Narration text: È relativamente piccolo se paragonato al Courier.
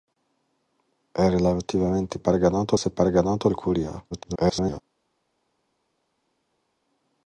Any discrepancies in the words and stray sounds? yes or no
yes